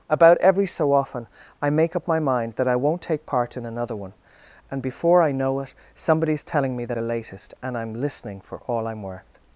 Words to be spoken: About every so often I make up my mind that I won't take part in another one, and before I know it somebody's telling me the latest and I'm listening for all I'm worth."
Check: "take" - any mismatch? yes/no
no